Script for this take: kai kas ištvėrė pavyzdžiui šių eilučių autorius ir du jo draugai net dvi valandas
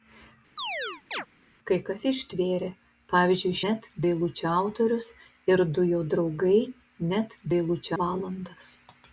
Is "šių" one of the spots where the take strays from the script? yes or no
yes